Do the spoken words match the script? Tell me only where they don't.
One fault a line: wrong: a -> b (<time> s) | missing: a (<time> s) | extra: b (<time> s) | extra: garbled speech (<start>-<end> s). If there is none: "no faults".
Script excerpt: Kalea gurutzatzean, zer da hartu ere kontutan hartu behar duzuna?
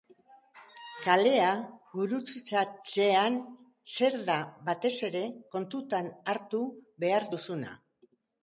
wrong: hartu -> batez (4.7 s)